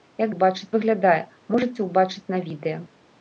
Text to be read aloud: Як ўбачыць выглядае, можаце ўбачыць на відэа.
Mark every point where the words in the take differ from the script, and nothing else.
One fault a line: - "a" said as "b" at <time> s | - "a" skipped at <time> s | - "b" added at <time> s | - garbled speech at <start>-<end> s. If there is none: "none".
none